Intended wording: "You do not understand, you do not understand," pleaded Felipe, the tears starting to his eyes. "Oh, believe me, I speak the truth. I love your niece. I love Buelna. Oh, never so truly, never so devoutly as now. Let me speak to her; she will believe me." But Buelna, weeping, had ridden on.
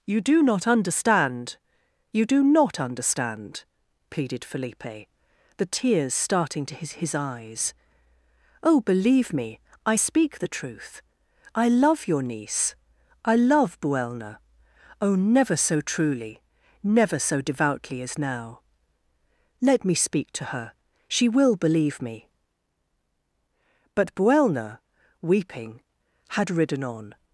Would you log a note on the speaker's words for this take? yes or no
yes